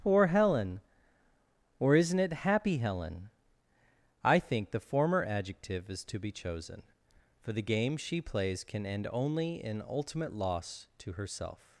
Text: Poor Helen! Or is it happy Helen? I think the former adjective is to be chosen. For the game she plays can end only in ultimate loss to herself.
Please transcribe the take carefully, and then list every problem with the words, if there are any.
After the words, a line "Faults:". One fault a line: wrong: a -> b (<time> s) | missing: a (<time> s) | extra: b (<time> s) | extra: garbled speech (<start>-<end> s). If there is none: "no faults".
Poor Helen! Or isn't it happy Helen? I think the former adjective is to be chosen. For the game she plays can end only in ultimate loss to herself.
Faults:
wrong: is -> isn't (1.9 s)